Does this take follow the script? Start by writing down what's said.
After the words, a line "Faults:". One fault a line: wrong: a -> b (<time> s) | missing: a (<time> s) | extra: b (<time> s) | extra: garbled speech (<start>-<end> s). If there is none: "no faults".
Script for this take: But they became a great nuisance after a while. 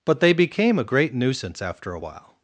But they became a great nuisance after a while.
Faults:
no faults